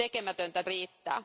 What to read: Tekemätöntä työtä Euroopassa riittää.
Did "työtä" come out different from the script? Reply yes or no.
yes